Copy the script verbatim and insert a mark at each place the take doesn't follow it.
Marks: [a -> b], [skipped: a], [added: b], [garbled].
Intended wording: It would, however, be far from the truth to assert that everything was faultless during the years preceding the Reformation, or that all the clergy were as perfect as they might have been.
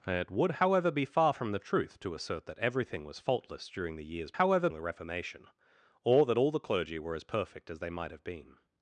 It would, however, be far from the truth to assert that everything was faultless during the years [preceding -> however] the Reformation, or that all the clergy were as perfect as they might have been.